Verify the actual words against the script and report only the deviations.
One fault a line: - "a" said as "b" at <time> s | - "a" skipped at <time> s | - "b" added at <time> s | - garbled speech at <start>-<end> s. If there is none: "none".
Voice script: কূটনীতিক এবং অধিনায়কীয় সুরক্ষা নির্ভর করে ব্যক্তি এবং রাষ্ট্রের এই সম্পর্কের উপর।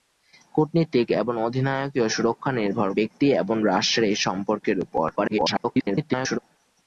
- "করে" skipped at 2.9 s
- garbled speech at 5.2-6.4 s